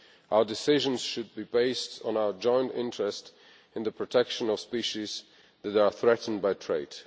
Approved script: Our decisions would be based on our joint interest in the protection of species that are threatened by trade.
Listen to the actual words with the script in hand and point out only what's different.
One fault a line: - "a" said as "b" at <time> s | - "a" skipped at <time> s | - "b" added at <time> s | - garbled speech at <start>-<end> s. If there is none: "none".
- "would" said as "should" at 1.0 s